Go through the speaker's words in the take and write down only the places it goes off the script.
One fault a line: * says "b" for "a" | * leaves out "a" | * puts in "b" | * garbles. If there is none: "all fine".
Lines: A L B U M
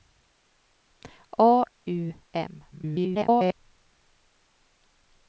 * leaves out "L B"
* garbles